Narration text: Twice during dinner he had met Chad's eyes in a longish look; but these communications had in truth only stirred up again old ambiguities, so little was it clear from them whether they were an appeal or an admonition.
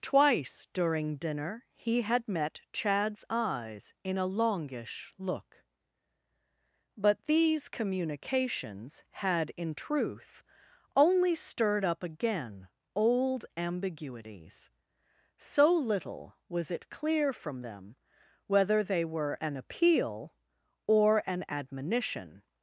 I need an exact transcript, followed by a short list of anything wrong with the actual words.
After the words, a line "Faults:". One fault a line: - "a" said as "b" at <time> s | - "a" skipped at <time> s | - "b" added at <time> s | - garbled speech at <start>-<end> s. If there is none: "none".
Twice during dinner he had met Chad's eyes in a longish look; but these communications had in truth only stirred up again old ambiguities, so little was it clear from them whether they were an appeal or an admonition.
Faults:
none